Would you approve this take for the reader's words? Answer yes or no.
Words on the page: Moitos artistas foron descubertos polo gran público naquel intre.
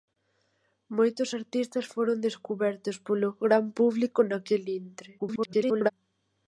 no